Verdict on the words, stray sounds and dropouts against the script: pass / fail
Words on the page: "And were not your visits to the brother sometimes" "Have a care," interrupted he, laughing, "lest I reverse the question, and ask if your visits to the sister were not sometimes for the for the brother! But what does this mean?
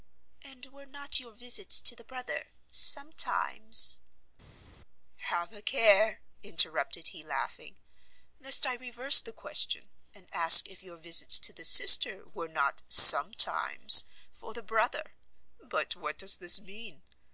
fail